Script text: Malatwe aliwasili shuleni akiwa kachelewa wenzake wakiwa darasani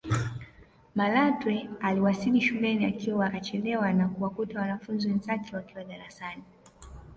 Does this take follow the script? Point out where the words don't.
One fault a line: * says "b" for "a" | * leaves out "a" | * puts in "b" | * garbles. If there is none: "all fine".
* puts in "na kuwakuta wanafunzi"